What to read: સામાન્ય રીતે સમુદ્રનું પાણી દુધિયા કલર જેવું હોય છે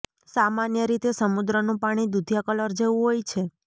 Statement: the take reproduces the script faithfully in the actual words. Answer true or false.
true